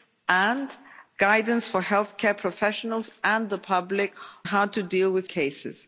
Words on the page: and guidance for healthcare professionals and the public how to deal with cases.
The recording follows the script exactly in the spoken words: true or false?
true